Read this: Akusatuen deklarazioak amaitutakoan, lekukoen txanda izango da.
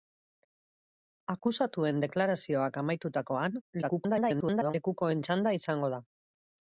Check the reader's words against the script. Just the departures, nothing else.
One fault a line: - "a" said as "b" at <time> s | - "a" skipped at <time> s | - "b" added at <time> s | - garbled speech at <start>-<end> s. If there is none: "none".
- garbled speech at 3.8-4.7 s